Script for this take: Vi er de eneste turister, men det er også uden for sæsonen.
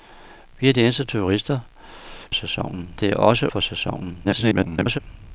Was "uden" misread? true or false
true